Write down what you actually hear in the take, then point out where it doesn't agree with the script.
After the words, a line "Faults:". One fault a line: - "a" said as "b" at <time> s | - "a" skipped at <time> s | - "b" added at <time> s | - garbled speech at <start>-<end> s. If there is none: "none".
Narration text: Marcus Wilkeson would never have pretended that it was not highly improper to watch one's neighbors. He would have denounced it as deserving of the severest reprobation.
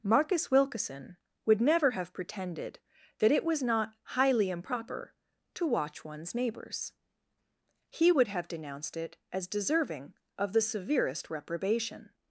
Marcus Wilkeson would never have pretended that it was not highly improper to watch one's neighbors. He would have denounced it as deserving of the severest reprobation.
Faults:
none